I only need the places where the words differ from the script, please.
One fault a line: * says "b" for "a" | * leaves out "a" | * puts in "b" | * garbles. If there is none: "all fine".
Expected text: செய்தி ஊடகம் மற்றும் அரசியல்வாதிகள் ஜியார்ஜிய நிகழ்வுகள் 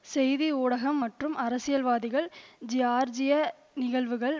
all fine